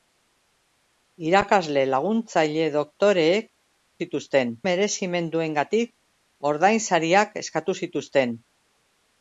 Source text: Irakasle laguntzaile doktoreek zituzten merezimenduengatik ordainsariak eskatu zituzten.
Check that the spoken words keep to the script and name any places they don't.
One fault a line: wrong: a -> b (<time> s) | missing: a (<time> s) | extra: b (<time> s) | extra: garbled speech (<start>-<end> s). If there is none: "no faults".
no faults